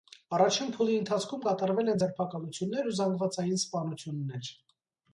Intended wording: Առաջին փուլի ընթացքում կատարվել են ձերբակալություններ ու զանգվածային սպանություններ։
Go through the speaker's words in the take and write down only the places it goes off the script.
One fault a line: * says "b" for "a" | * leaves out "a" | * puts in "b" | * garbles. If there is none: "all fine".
all fine